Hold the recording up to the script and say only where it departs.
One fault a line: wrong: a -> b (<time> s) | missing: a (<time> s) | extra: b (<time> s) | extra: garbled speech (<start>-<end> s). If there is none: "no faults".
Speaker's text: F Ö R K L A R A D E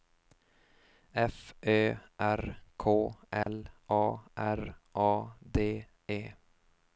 no faults